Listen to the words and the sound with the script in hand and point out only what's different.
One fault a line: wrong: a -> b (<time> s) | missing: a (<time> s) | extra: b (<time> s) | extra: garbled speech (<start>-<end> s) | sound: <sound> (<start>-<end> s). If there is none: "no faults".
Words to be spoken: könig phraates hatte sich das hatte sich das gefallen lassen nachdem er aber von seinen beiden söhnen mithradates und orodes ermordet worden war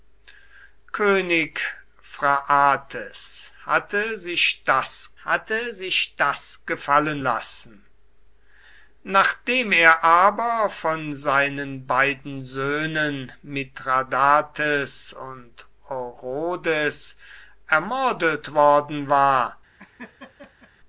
sound: laugh (19.8-20.7 s)